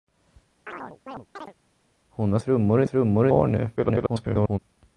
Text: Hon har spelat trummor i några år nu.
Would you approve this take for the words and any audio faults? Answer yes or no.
no